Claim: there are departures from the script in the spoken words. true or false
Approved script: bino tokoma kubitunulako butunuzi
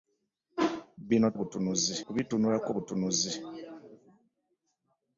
true